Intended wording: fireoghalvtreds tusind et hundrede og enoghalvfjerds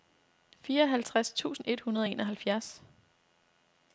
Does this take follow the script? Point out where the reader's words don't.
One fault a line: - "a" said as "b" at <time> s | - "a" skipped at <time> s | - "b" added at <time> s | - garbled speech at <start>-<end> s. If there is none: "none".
none